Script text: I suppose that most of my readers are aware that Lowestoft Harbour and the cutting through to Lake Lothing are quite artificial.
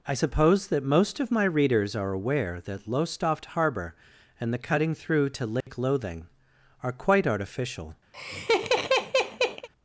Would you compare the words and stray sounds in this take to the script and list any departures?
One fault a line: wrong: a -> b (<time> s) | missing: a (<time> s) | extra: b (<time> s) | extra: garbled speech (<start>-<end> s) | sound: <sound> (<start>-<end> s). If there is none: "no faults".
sound: dropout (5.6-5.7 s)
sound: laugh (8.1-9.7 s)